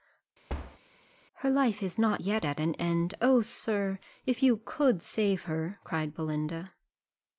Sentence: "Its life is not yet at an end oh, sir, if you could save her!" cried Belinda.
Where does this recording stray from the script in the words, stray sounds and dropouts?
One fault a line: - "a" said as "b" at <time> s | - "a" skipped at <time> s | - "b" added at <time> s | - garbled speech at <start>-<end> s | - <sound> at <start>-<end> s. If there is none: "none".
- thud at 0.5-0.8 s
- "Its" said as "Her" at 1.4 s